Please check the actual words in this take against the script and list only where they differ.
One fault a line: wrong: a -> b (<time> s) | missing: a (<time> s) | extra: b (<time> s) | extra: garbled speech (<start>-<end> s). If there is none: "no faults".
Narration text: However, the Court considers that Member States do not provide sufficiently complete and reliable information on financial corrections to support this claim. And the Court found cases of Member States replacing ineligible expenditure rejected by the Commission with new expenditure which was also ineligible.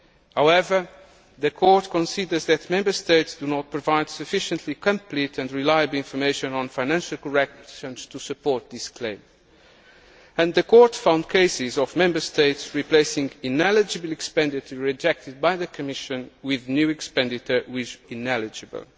missing: was also (18.0 s)